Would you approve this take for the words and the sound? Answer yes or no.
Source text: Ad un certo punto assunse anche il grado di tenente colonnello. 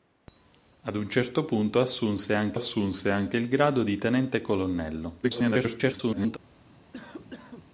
no